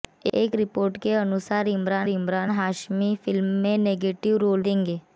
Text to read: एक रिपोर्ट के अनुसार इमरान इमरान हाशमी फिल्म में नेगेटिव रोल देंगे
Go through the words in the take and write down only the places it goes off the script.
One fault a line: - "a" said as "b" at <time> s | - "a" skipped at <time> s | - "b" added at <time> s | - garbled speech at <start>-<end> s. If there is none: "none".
none